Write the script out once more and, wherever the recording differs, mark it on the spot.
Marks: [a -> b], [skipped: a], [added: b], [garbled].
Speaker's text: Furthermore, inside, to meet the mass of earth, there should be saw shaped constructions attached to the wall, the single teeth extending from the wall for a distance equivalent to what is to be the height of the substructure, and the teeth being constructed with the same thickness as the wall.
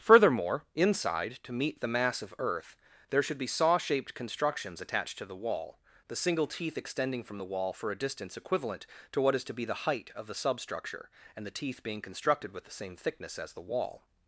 Furthermore, inside, to meet the mass of earth, there should be saw shaped constructions attached to the wall, the single teeth extending from the wall for a distance equivalent to what is to be the height of the substructure, and the teeth being constructed with the same thickness as the wall.